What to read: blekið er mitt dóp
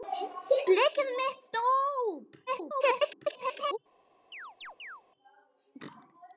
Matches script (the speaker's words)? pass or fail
fail